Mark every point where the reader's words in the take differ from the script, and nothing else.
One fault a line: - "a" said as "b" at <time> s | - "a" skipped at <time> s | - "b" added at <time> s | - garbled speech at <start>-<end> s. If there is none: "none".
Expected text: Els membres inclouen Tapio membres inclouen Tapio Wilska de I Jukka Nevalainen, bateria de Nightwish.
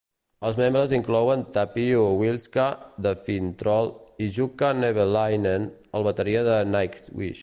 - "membres inclouen Tapio" skipped at 2.0 s
- "Finntroll" added at 3.3 s
- "el" added at 5.9 s